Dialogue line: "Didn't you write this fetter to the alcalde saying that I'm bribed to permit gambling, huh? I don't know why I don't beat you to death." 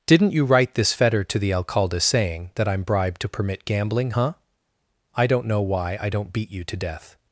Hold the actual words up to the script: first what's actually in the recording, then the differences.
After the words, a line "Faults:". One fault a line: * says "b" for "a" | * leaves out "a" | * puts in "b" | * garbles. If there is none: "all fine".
"Didn't you write this fetter to the alcalde saying that I'm bribed to permit gambling, huh? I don't know why I don't beat you to death."
Faults:
all fine